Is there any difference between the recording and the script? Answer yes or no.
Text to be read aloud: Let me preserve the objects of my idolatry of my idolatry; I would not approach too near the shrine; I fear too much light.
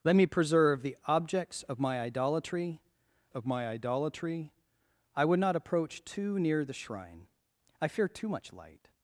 no